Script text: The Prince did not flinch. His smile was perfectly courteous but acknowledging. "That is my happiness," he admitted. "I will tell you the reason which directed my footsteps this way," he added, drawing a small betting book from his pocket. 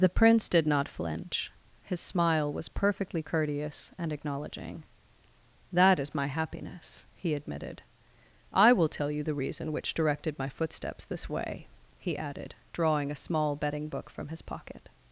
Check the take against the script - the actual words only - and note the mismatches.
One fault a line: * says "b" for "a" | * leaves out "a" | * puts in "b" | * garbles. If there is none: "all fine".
* says "and" for "but"